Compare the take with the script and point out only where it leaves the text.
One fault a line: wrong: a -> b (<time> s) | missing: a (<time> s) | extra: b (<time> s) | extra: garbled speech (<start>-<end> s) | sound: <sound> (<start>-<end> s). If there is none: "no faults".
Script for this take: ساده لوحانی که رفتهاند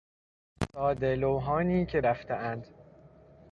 no faults